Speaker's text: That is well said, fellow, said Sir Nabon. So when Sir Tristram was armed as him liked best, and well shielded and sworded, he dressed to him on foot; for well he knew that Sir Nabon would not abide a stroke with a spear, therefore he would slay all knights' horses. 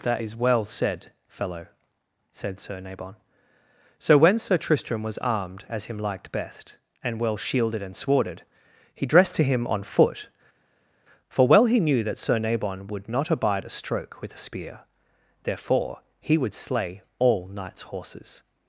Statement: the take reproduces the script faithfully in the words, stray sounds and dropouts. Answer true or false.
true